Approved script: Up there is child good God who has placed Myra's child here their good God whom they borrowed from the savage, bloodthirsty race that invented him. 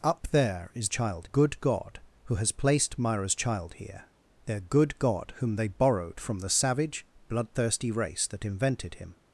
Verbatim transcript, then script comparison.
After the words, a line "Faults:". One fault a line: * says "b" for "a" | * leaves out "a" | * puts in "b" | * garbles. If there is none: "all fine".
Up there is child good God who has placed Myra's child here their good God whom they borrowed from the savage, bloodthirsty race that invented him.
Faults:
all fine